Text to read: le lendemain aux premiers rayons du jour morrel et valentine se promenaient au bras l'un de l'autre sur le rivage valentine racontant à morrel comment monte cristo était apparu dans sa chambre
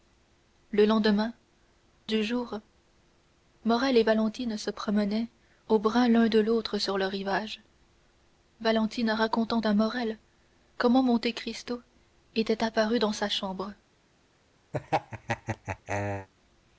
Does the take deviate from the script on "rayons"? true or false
true